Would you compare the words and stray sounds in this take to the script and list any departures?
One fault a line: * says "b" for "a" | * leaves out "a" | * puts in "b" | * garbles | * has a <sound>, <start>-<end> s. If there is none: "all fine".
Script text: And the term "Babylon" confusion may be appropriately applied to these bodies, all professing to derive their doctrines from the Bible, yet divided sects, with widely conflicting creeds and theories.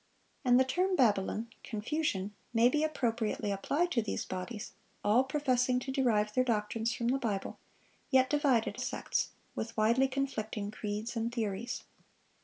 all fine